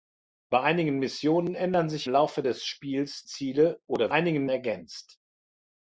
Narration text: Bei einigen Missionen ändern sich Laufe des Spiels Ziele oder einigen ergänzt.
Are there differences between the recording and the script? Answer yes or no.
no